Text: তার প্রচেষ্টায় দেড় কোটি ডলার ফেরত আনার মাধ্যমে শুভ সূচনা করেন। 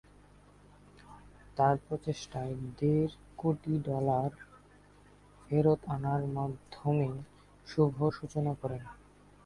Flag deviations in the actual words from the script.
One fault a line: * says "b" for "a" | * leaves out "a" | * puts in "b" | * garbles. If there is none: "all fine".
all fine